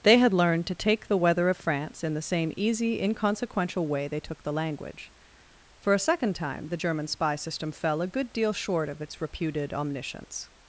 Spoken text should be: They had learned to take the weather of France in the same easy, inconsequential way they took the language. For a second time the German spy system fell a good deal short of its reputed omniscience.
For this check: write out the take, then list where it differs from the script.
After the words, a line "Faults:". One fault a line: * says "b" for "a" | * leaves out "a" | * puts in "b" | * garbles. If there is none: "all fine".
They had learned to take the weather of France in the same easy, inconsequential way they took the language. For a second time the German spy system fell a good deal short of its reputed omniscience.
Faults:
all fine